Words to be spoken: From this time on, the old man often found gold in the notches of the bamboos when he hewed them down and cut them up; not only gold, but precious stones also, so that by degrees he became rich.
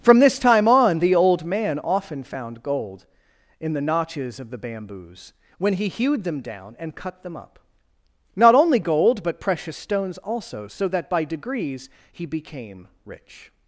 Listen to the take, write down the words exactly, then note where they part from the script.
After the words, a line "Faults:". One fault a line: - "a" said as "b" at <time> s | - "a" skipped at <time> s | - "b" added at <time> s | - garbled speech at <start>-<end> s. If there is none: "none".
From this time on, the old man often found gold in the notches of the bamboos when he hewed them down and cut them up; not only gold, but precious stones also, so that by degrees he became rich.
Faults:
none